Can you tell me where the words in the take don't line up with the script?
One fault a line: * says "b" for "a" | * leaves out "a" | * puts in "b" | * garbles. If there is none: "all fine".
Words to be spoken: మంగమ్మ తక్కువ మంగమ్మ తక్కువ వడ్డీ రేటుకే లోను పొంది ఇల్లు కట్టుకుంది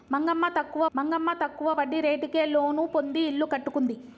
all fine